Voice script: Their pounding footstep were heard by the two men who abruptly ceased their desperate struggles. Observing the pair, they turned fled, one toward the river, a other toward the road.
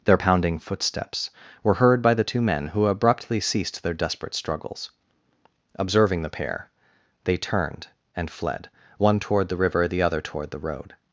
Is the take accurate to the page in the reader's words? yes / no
no